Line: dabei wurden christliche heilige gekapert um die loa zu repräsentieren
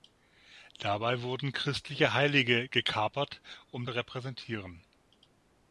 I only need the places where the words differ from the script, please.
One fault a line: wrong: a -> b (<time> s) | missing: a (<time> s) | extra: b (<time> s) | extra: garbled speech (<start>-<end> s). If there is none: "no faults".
missing: die loa zu (3.9 s)